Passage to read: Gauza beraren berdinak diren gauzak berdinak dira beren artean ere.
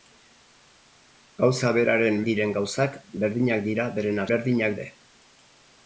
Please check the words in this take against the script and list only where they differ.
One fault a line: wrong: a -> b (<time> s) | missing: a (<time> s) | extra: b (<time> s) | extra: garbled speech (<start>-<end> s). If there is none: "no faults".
missing: berdinak (2.2 s)
wrong: artean -> berdinak (4.3 s)